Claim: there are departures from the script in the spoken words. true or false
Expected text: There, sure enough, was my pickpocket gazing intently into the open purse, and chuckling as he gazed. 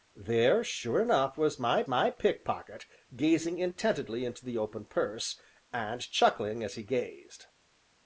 true